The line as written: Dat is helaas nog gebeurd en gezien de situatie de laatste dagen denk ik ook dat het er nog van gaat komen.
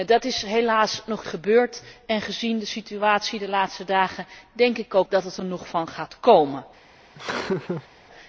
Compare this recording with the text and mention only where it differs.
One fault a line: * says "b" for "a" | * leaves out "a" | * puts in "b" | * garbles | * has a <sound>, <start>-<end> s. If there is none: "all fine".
* has a laugh, 7.1-7.9 s